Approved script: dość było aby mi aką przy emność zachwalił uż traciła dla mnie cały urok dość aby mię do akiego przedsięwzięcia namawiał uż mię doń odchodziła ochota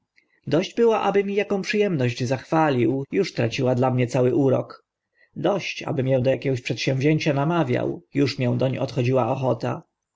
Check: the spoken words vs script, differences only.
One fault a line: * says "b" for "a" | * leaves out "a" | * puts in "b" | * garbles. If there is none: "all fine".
all fine